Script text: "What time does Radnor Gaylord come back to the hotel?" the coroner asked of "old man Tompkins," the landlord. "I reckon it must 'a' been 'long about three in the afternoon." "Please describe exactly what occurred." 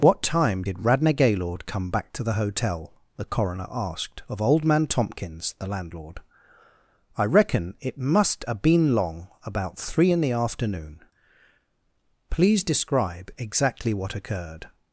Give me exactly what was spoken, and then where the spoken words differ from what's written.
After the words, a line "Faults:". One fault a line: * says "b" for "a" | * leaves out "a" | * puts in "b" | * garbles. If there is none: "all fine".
"What time did Radnor Gaylord come back to the hotel?" the coroner asked of "old man Tompkins," the landlord. "I reckon it must 'a' been 'long about three in the afternoon." "Please describe exactly what occurred."
Faults:
* says "did" for "does"